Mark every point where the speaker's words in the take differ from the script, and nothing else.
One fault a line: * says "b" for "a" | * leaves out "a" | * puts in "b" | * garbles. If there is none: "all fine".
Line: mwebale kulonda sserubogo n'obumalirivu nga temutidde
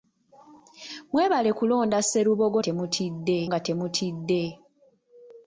* says "temutidde" for "n'obumalirivu"